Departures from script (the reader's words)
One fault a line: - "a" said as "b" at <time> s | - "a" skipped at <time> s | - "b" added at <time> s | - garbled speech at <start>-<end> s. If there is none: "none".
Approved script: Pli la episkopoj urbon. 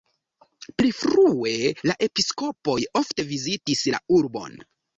- "frue" added at 1.0 s
- "ofte vizitis la" added at 3.0 s